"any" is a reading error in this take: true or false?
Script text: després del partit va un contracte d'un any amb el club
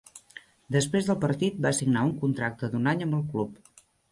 false